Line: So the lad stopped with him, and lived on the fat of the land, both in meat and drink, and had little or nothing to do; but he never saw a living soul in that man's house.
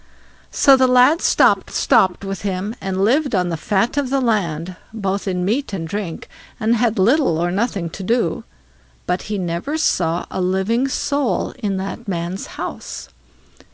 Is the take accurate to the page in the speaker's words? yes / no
no